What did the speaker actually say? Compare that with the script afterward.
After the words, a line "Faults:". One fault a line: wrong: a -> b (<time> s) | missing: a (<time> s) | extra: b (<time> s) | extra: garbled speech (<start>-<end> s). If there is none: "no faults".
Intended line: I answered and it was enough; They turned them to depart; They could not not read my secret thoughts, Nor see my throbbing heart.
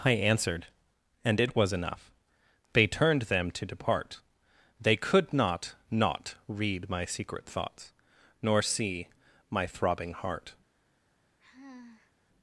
I answered and it was enough; They turned them to depart; They could not not read my secret thoughts, Nor see my throbbing heart.
Faults:
no faults